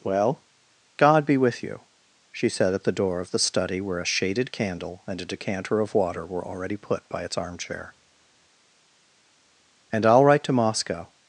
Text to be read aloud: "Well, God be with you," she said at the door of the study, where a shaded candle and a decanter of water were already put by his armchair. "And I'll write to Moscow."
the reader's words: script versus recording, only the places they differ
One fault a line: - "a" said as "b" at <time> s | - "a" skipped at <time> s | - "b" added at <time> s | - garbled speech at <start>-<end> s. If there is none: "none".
- "his" said as "its" at 7.2 s